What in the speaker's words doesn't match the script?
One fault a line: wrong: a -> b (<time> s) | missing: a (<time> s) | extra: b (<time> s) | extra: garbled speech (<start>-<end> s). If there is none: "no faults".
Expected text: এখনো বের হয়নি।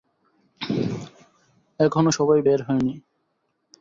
extra: সবাই (2.1 s)